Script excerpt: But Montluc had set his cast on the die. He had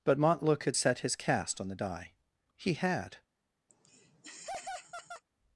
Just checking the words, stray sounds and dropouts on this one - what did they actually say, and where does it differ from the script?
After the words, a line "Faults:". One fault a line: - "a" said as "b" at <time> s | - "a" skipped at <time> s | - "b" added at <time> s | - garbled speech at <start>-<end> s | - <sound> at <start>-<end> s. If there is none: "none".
But Montluc had set his cast on the die. He had
Faults:
- laugh at 3.7-5.2 s